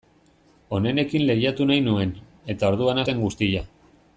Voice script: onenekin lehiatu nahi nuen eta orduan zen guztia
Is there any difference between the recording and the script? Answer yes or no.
no